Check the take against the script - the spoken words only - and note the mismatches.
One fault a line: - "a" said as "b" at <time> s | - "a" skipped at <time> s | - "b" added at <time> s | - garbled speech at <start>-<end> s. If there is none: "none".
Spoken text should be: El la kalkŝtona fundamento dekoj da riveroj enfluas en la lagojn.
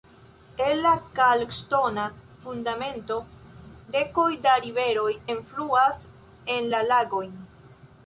none